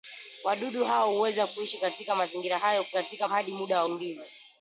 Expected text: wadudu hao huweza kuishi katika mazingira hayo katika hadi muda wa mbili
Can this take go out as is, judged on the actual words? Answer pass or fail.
pass